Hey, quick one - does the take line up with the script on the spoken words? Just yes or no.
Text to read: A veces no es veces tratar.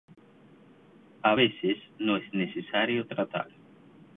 no